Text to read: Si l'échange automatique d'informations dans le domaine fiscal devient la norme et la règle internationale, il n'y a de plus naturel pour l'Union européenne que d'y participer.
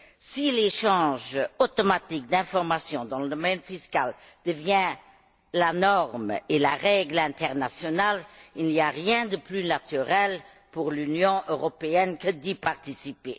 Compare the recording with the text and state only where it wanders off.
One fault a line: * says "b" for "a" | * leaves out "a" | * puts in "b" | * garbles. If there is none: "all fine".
* puts in "rien"